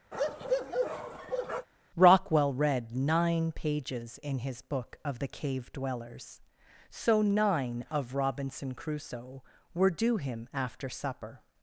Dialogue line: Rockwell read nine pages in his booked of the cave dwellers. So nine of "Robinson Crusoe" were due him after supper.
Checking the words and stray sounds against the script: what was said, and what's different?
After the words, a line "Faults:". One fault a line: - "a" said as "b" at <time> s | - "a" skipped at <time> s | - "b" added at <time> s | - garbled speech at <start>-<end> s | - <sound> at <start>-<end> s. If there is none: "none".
Rockwell read nine pages in his book of the cave dwellers. So nine of "Robinson Crusoe" were due him after supper.
Faults:
- bark at 0.1-1.7 s
- "booked" said as "book" at 4.6 s